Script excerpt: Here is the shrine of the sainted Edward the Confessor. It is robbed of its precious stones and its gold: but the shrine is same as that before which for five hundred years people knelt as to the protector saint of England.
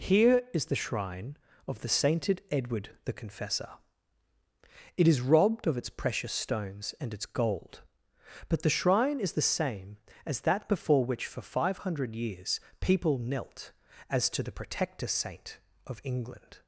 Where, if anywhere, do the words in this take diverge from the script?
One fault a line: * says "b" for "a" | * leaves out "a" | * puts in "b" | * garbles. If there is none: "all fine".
* puts in "the"